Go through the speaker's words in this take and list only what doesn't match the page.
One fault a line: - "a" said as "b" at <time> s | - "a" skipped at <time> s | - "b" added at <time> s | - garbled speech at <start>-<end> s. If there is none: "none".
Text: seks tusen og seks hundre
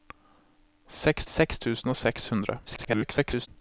- "seks" added at 1.3 s
- garbled speech at 2.7-3.5 s